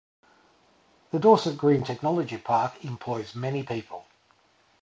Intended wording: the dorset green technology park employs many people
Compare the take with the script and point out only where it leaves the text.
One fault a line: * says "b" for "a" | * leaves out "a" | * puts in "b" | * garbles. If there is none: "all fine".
all fine